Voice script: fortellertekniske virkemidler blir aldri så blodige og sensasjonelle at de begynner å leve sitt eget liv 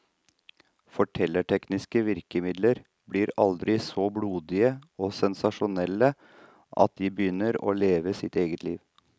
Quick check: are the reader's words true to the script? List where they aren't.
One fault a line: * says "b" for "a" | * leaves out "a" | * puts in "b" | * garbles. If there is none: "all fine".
all fine